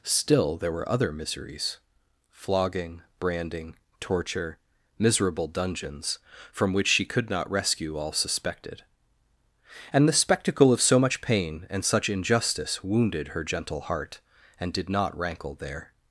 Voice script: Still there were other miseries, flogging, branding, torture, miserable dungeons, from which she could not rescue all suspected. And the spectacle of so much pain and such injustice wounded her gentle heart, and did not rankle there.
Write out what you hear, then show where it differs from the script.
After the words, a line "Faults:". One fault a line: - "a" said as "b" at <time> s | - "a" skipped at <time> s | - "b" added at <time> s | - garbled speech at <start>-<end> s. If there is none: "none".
Still there were other miseries, flogging, branding, torture, miserable dungeons, from which she could not rescue all suspected. And the spectacle of so much pain and such injustice wounded her gentle heart, and did not rankle there.
Faults:
none